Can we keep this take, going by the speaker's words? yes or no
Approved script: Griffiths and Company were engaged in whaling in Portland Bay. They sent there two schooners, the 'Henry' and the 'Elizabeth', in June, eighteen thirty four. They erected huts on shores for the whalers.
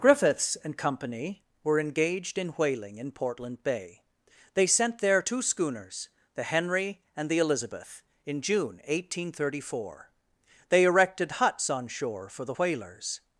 no